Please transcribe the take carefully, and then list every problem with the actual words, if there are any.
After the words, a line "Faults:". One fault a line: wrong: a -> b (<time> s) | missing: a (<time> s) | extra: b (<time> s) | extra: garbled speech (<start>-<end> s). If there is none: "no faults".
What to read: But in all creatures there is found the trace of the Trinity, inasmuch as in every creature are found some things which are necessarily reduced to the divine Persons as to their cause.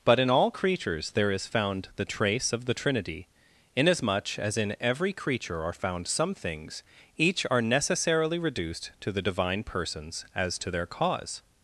But in all creatures there is found the trace of the Trinity, inasmuch as in every creature are found some things each are necessarily reduced to the divine Persons as to their cause.
Faults:
wrong: which -> each (7.2 s)